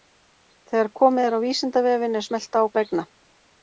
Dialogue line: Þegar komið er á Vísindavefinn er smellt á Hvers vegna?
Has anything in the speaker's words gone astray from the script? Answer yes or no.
yes